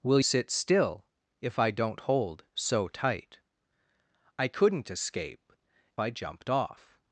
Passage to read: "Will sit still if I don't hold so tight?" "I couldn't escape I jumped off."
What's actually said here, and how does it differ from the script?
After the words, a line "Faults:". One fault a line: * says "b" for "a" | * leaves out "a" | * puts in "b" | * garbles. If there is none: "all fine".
"Will sit still if I don't hold so tight?" "I couldn't escape I jumped off."
Faults:
all fine